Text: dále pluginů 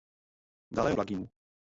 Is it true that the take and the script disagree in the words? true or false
false